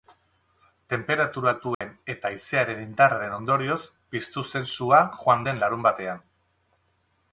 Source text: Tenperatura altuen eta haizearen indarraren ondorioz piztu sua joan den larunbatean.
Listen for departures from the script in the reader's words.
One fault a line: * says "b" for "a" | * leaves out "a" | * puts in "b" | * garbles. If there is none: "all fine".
* puts in "zen"